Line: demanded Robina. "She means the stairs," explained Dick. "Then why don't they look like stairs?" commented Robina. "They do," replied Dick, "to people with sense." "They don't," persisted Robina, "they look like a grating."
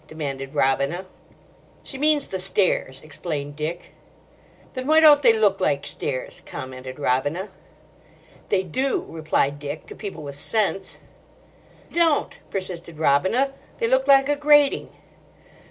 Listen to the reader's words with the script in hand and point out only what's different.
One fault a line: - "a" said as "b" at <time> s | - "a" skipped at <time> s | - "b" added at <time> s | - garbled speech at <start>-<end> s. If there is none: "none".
- "They" skipped at 11.0 s